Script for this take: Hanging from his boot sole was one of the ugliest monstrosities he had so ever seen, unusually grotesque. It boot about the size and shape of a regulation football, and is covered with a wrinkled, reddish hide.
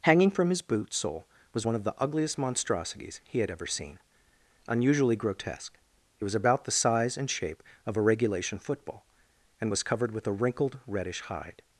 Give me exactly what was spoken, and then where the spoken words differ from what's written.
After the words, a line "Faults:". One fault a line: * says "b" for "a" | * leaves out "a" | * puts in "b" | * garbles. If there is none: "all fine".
Hanging from his boot sole was one of the ugliest monstrosities he had ever seen, unusually grotesque. It was about the size and shape of a regulation football, and was covered with a wrinkled, reddish hide.
Faults:
* leaves out "so"
* says "was" for "boot"
* says "was" for "is"